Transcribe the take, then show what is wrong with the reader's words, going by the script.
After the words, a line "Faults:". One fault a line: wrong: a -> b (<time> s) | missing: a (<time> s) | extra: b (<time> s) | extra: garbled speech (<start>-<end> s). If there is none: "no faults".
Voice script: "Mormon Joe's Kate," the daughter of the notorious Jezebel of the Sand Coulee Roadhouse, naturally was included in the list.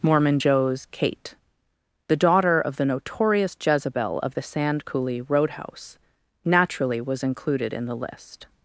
"Mormon Joe's Kate," the daughter of the notorious Jezebel of the Sand Coulee Roadhouse, naturally was included in the list.
Faults:
no faults